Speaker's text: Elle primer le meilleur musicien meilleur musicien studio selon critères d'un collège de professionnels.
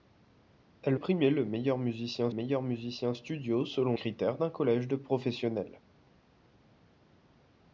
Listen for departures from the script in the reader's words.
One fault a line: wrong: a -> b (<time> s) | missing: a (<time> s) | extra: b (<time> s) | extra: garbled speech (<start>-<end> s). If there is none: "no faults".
no faults